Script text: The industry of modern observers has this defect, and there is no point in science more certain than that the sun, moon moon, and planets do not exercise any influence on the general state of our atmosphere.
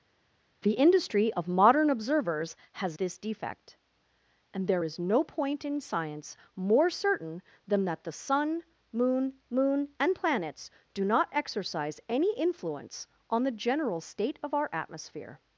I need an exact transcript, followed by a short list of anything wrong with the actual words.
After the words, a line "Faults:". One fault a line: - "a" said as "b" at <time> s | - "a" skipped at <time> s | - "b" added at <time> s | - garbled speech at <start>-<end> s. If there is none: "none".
The industry of modern observers has this defect, and there is no point in science more certain than that the sun, moon moon, and planets do not exercise any influence on the general state of our atmosphere.
Faults:
none